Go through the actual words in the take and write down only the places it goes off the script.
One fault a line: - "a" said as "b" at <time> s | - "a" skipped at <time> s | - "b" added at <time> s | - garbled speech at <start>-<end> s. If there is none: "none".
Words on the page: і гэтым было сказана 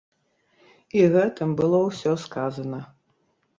- "ўсё" added at 1.9 s